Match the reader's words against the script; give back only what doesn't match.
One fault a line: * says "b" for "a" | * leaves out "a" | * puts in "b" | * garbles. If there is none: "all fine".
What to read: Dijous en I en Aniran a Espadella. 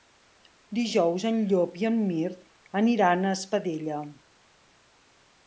* puts in "Llop"
* puts in "Mirt"